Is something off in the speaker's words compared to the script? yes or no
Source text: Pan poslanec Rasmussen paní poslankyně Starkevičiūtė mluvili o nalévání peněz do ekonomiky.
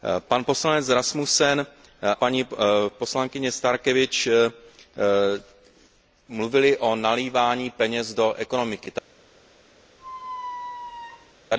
no